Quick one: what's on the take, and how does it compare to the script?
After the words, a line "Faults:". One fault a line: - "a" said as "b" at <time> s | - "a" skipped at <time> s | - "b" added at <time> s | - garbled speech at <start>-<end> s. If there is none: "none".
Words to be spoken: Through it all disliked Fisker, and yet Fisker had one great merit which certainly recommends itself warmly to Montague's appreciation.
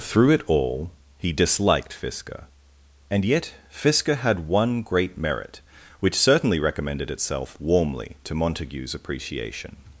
Through it all he disliked Fisker, and yet Fisker had one great merit which certainly recommended itself warmly to Montague's appreciation.
Faults:
- "he" added at 1.2 s
- "recommends" said as "recommended" at 6.6 s